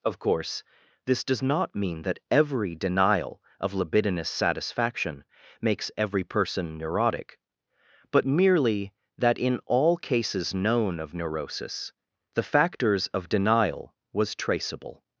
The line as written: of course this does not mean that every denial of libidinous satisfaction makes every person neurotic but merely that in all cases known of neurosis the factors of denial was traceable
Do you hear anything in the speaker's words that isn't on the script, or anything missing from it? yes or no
no